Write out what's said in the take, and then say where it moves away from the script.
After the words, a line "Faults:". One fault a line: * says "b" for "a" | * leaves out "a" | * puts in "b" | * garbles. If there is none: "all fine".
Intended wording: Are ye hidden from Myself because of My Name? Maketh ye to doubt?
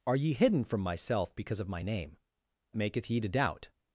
Are ye hidden from Myself because of My Name? Maketh ye to doubt?
Faults:
all fine